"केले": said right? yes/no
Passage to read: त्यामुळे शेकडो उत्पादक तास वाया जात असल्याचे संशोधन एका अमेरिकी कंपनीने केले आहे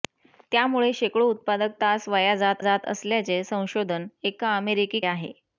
no